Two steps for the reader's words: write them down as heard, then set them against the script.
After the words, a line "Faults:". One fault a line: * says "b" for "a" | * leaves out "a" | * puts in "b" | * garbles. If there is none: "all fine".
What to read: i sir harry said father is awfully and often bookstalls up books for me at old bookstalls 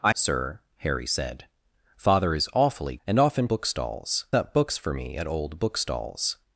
i sir harry said father is awfully and often bookstalls up books for me at old bookstalls
Faults:
all fine